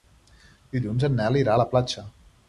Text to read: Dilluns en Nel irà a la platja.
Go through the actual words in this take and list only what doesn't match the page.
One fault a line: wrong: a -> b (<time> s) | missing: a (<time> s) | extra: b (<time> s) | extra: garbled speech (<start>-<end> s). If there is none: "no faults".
no faults